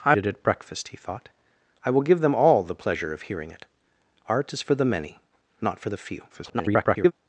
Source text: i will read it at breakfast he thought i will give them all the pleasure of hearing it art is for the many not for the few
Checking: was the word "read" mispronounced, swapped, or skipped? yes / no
yes